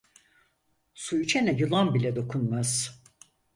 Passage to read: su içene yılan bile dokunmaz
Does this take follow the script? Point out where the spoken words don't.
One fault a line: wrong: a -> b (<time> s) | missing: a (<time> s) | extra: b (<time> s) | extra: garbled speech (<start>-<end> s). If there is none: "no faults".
no faults